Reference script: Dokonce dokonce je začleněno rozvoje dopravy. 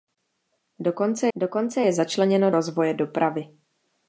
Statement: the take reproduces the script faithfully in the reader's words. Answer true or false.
true